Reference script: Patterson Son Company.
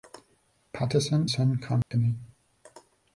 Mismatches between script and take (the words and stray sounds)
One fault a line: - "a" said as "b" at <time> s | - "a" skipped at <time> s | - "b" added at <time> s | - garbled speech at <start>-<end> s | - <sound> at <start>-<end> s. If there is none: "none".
- dropout at 1.8-1.9 s